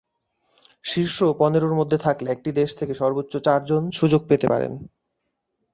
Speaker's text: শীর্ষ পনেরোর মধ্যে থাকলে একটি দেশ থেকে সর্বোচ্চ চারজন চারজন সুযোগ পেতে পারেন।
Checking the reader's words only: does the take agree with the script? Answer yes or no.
no